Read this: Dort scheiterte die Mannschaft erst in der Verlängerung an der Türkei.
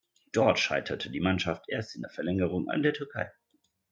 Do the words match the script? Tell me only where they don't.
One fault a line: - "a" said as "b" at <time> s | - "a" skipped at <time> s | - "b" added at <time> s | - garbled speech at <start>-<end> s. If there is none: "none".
none